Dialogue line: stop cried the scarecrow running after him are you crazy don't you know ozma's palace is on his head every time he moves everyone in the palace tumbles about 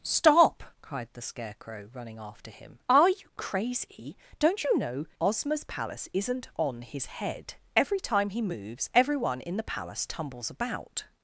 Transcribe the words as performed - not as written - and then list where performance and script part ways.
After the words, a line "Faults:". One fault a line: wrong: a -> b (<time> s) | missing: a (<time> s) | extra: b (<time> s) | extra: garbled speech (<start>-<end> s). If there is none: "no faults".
stop cried the scarecrow running after him are you crazy don't you know ozma's palace isn't on his head every time he moves everyone in the palace tumbles about
Faults:
wrong: is -> isn't (6.1 s)